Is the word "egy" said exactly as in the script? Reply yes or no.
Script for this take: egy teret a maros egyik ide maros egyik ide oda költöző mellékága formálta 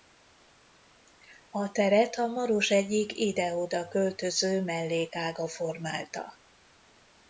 no